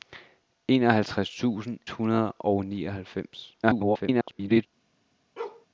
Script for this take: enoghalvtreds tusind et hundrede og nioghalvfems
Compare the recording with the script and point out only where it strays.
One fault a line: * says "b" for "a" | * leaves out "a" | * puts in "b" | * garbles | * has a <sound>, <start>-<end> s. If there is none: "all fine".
* leaves out "et"
* garbles
* has a bark, 5.4-5.7 s